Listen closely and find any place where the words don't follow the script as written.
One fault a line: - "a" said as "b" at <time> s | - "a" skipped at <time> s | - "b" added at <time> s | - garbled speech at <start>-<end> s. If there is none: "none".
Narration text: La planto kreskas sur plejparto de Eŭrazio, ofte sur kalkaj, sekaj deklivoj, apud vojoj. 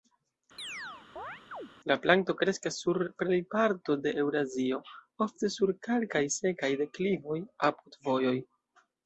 none